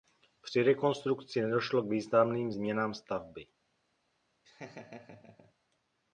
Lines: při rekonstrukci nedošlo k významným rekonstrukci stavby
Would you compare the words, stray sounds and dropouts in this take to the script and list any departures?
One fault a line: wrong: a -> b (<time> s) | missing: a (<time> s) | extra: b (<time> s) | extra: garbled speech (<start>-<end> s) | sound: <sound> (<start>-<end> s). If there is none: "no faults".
wrong: rekonstrukci -> změnám (2.5 s)
sound: laugh (4.4-5.5 s)